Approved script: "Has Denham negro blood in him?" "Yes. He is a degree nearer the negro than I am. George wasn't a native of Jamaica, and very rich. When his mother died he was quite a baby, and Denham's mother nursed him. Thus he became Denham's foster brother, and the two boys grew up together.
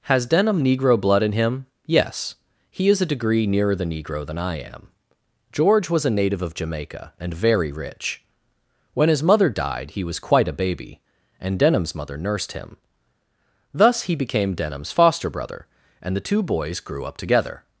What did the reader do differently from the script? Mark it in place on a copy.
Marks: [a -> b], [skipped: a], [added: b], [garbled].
"Has Denham negro blood in him?" "Yes. He is a degree nearer the negro than I am. George [wasn't -> was] a native of Jamaica, and very rich. When his mother died he was quite a baby, and Denham's mother nursed him. Thus he became Denham's foster brother, and the two boys grew up together.